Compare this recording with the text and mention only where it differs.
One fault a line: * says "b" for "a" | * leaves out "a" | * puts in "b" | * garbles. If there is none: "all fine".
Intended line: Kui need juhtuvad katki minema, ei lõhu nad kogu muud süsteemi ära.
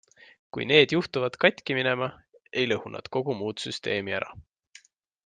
all fine